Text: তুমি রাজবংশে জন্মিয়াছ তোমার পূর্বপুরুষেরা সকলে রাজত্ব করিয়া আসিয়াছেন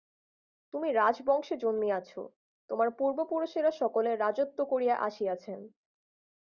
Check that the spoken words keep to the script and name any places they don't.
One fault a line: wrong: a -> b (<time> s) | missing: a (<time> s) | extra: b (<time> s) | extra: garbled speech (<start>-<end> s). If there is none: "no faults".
no faults